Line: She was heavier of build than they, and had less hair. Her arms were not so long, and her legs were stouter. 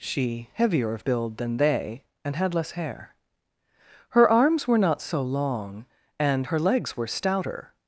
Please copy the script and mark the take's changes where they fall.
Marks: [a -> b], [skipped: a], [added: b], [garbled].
She [skipped: was] heavier of build than they, and had less hair. Her arms were not so long, and her legs were stouter.